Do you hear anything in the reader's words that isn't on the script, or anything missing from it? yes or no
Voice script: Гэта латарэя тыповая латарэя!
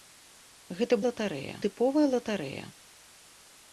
no